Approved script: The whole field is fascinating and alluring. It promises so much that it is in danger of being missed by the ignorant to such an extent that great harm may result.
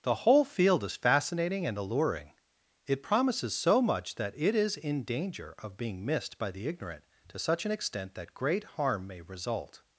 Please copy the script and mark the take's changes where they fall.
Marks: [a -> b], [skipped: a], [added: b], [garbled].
The whole field is fascinating and alluring. It promises so much that it is in danger of being missed by the ignorant to such an extent that great harm may result.